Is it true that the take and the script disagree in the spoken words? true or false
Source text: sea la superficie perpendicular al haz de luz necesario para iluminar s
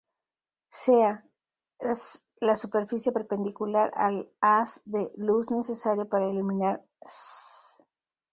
true